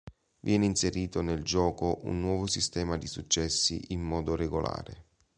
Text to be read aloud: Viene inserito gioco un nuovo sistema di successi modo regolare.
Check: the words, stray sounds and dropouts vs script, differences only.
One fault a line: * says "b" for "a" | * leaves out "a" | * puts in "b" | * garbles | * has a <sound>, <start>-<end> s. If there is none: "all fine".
* puts in "nel"
* puts in "in"